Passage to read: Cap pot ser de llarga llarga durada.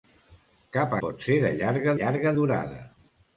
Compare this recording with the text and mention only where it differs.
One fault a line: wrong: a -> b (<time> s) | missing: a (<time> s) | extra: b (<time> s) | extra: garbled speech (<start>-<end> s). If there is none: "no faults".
no faults